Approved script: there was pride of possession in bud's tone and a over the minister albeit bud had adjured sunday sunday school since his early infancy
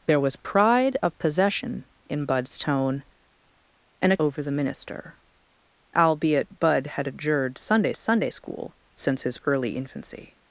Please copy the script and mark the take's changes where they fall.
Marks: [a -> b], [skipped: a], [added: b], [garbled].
there was pride of possession in bud's tone and a over the minister albeit bud had adjured sunday sunday school since his early infancy